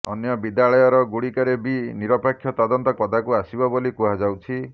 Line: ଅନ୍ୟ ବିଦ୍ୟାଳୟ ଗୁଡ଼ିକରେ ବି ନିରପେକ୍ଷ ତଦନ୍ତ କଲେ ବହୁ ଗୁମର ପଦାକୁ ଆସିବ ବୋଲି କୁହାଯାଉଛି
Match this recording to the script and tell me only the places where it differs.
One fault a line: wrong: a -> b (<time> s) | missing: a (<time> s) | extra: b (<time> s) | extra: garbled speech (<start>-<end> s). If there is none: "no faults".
missing: କଲେ ବହୁ ଗୁମର (2.9 s)